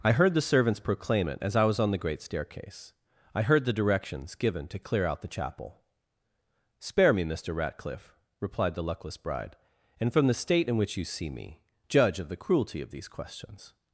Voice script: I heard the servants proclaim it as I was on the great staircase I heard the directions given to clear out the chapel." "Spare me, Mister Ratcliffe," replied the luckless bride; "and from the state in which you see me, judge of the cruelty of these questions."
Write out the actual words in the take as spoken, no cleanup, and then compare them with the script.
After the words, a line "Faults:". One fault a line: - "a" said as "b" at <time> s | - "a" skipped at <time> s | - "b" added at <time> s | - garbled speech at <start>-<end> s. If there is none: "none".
I heard the servants proclaim it as I was on the great staircase I heard the directions given to clear out the chapel." "Spare me, Mister Ratcliffe," replied the luckless bride; "and from the state in which you see me, judge of the cruelty of these questions."
Faults:
none